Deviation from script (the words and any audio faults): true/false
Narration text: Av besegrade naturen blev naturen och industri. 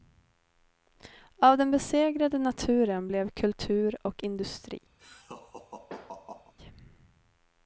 true